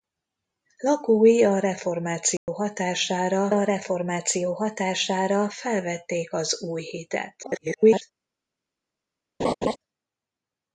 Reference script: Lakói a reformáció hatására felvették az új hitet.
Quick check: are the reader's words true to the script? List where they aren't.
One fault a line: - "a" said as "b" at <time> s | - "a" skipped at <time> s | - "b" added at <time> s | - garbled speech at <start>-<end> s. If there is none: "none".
- "a reformáció hatására" added at 3.5 s
- garbled speech at 7.4-8.0 s